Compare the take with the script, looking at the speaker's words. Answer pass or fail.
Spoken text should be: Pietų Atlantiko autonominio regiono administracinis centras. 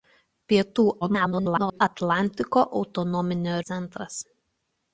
fail